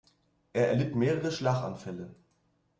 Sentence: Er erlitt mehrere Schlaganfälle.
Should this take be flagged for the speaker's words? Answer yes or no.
no